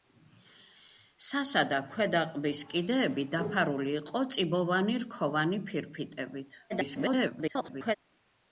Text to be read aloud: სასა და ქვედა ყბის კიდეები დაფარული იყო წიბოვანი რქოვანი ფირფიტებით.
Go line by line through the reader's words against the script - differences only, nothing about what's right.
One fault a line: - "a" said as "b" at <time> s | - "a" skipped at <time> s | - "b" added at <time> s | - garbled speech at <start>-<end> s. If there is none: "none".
- garbled speech at 6.7-8.0 s